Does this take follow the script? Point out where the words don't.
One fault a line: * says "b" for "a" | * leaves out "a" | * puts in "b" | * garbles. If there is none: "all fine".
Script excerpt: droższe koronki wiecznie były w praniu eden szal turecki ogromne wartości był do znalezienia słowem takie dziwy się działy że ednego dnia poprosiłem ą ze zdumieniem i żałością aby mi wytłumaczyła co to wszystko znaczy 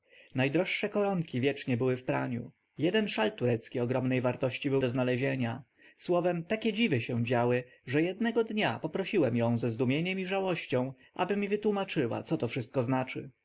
all fine